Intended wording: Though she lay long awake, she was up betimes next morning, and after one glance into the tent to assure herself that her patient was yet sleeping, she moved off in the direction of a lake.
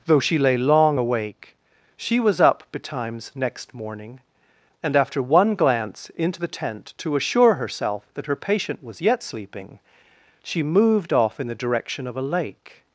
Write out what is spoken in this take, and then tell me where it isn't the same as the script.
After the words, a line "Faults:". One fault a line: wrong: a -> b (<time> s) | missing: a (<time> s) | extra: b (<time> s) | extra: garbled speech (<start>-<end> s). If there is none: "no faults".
Though she lay long awake, she was up betimes next morning, and after one glance into the tent to assure herself that her patient was yet sleeping, she moved off in the direction of a lake.
Faults:
no faults